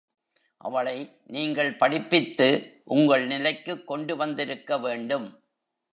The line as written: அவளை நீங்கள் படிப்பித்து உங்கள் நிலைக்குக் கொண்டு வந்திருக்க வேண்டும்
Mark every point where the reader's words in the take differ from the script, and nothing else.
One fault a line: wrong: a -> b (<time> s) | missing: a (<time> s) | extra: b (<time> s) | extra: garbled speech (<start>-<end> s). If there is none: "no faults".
no faults